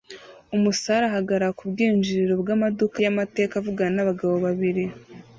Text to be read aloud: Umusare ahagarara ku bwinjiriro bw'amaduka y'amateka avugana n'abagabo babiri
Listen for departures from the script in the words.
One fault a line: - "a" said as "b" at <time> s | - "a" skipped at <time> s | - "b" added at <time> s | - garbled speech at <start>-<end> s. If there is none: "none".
none